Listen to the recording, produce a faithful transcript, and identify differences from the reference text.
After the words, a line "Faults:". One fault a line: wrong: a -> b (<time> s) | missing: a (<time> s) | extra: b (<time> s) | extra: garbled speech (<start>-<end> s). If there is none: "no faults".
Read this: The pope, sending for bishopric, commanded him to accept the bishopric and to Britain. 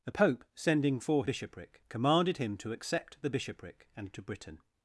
The pope, sending for bishopric, commanded him to accept the bishopric and to Britain.
Faults:
no faults